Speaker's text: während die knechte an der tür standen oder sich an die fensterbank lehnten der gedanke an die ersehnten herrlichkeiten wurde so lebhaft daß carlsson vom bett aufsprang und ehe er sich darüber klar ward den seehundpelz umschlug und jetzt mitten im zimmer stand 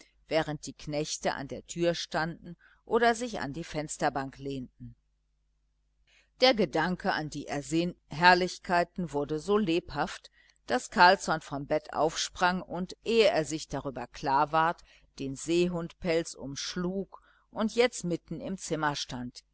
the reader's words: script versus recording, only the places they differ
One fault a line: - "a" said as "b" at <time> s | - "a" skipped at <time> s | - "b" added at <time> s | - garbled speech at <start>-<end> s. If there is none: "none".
none